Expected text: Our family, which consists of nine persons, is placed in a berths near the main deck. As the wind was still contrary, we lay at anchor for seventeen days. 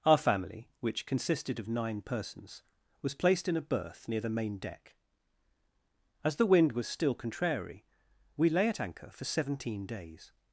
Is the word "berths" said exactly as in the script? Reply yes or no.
no